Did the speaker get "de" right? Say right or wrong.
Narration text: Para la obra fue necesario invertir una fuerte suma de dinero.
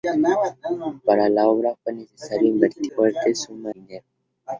wrong